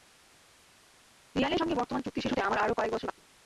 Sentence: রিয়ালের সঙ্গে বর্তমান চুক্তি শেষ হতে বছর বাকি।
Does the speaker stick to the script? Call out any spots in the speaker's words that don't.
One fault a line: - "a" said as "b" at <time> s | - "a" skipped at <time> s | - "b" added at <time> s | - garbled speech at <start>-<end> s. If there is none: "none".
- "আমার আরও কয়েক" added at 2.4 s